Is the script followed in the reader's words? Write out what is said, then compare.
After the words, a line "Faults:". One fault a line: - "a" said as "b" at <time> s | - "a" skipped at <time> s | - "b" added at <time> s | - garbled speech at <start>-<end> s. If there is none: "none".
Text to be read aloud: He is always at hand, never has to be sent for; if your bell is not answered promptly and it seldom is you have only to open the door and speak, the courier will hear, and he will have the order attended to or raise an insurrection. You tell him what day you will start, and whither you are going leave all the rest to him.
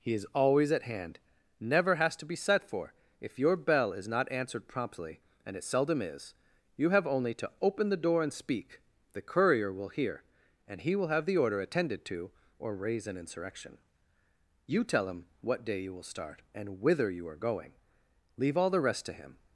He is always at hand, never has to be set for; if your bell is not answered promptly and it seldom is you have only to open the door and speak, the courier will hear, and he will have the order attended to or raise an insurrection. You tell him what day you will start, and whither you are going leave all the rest to him.
Faults:
- "sent" said as "set" at 2.4 s